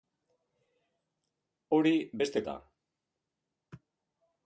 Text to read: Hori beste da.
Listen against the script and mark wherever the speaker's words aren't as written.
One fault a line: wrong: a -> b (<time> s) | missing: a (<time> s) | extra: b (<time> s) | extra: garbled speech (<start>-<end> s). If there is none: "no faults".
no faults